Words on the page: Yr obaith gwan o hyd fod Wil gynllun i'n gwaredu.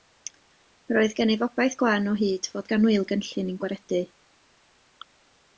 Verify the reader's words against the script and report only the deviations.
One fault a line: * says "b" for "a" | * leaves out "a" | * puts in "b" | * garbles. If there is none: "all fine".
* puts in "oedd gennyf"
* puts in "gan"